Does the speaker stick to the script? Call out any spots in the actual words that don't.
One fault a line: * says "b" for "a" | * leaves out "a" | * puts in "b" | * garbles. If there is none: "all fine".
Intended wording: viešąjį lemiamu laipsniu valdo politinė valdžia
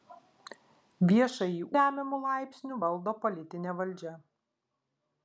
all fine